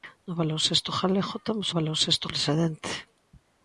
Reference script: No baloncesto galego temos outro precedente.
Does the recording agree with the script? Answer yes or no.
no